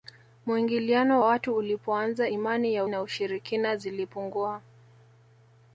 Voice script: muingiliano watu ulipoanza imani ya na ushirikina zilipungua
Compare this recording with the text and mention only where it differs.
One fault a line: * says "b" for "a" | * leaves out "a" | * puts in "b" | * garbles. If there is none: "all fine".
all fine